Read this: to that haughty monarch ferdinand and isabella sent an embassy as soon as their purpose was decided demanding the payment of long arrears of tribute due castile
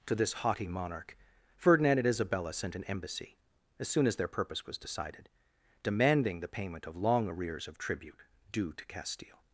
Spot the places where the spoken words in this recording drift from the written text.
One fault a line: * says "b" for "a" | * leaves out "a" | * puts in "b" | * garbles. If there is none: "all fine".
* says "this" for "that"
* puts in "to"